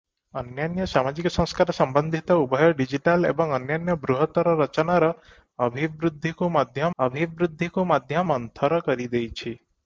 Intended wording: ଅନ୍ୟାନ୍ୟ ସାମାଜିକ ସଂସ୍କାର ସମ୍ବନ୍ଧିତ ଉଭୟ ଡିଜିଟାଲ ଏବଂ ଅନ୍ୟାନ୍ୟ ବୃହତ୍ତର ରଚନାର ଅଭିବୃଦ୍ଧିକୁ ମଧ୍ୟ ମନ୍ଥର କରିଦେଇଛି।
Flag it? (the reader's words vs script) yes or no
yes